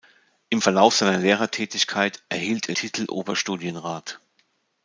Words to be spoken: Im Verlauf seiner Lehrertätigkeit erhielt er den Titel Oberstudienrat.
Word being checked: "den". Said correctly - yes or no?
no